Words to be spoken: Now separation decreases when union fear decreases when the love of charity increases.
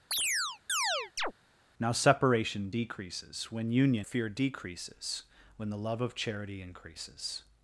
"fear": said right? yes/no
yes